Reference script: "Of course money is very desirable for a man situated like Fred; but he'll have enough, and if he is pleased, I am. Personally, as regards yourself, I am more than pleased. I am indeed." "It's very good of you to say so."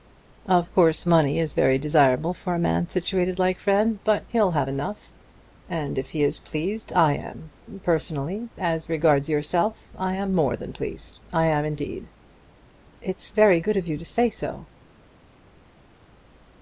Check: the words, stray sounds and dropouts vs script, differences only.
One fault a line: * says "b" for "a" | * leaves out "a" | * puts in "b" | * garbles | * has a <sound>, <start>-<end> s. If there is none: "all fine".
all fine